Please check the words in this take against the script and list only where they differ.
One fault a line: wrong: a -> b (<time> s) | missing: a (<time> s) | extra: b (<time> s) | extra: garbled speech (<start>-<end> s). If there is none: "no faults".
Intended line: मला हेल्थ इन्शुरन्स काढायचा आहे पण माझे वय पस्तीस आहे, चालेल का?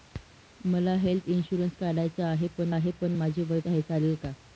extra: आहे पण (2.7 s)
missing: पस्तीस (3.6 s)